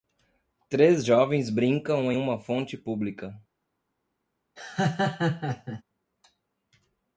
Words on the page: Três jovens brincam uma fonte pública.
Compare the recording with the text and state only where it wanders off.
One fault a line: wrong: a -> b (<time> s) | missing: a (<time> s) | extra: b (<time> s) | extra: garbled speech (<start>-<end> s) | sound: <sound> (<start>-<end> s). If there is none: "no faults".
sound: laugh (4.6-5.8 s)